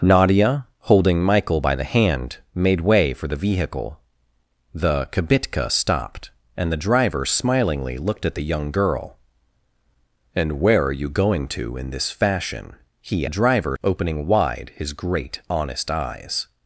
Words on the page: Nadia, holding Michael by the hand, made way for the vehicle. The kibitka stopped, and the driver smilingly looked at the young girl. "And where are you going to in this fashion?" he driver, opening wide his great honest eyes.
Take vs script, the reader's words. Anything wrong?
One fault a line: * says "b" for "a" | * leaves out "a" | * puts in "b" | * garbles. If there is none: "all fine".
all fine